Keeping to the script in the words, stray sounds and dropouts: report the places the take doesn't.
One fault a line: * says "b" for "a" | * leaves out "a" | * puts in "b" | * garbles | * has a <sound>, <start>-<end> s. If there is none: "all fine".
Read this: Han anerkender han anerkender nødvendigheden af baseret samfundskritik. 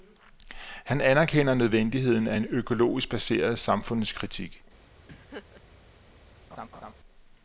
* says "nødvendigheden af en økologisk" for "han anerkender nødvendigheden af"
* has a laugh, 5.1-5.6 s
* has a laugh, 6.5-6.9 s